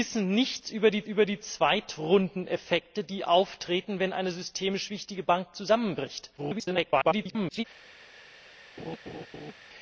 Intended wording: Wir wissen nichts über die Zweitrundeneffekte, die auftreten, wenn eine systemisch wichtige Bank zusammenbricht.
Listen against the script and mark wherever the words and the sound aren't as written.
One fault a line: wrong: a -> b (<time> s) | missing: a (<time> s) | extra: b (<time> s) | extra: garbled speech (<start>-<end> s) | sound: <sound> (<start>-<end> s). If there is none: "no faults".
extra: über die (1.1 s)
extra: garbled speech (6.4-7.6 s)
sound: laugh (8.8-9.5 s)